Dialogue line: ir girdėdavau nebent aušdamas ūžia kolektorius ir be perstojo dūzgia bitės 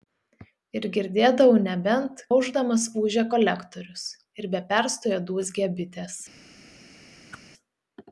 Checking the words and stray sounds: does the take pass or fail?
fail